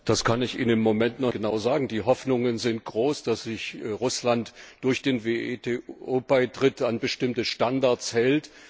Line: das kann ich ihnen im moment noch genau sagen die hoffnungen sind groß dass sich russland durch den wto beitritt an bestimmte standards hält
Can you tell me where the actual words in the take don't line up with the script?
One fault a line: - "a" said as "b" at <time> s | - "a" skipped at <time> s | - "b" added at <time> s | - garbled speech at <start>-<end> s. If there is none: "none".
none